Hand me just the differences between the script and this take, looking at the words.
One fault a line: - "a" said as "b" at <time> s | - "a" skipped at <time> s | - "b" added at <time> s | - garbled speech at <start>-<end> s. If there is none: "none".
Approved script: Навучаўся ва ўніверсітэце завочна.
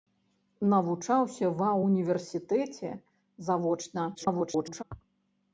- garbled speech at 4.1-4.8 s